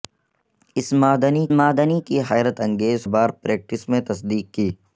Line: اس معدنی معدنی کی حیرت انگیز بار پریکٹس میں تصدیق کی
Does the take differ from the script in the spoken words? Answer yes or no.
no